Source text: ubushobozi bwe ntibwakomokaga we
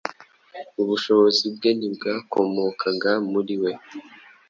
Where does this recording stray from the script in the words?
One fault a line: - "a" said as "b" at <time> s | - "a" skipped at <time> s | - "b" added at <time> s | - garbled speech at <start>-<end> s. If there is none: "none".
- "muri" added at 3.3 s